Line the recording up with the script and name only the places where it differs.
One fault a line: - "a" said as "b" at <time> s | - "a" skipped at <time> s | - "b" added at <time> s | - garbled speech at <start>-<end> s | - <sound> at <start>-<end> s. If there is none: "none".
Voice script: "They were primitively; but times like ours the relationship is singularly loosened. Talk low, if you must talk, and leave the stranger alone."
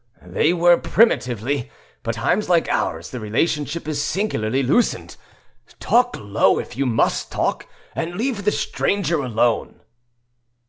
none